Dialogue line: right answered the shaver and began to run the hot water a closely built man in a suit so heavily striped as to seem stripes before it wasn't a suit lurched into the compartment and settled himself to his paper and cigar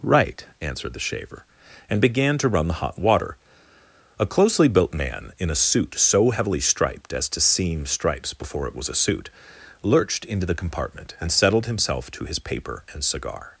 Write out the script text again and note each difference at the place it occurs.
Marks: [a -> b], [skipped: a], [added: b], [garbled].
right answered the shaver and began to run the hot water a closely built man in a suit so heavily striped as to seem stripes before it [wasn't -> was] a suit lurched into the compartment and settled himself to his paper and cigar